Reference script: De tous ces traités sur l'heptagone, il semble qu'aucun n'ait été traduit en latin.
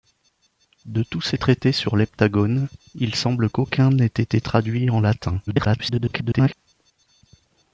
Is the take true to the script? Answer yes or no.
no